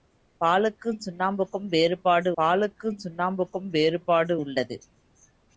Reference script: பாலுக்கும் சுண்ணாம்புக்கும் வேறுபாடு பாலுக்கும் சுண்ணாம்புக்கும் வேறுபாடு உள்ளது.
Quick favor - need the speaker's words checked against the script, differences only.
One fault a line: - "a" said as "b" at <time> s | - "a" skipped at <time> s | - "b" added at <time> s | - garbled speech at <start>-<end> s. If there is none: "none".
none